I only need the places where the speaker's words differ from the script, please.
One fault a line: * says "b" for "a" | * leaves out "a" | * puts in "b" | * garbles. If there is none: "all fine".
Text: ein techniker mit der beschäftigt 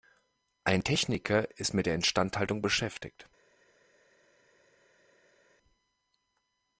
* puts in "ist"
* puts in "instandhaltung"